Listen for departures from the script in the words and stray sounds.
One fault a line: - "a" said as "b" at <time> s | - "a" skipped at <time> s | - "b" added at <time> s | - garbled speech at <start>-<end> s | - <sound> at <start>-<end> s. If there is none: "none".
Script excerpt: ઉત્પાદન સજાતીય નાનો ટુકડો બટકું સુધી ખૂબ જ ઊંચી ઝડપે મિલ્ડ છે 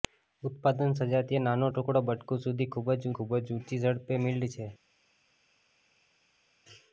- "ખૂબ જ" added at 3.1 s